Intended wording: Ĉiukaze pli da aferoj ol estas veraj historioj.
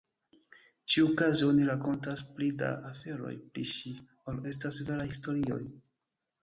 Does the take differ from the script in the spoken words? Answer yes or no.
yes